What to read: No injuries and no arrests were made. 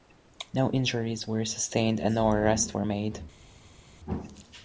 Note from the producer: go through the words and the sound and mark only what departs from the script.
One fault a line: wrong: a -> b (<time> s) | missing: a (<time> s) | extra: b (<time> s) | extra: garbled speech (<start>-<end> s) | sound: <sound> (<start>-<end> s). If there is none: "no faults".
extra: were sustained (1.3 s)